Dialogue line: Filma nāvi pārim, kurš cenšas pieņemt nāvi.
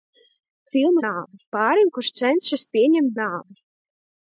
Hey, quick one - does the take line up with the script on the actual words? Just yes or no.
yes